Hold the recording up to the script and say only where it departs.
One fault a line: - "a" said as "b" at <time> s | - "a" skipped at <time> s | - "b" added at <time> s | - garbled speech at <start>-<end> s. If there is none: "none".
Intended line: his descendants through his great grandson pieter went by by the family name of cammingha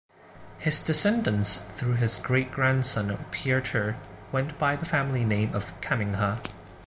- "by" skipped at 4.8 s